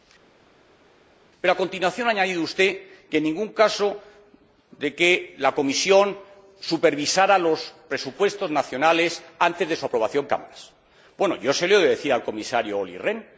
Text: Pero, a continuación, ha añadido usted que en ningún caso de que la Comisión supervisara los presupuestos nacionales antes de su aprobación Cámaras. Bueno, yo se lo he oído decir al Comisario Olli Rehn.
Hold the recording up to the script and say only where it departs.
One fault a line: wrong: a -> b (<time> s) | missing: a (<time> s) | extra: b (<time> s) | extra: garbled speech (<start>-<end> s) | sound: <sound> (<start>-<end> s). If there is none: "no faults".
no faults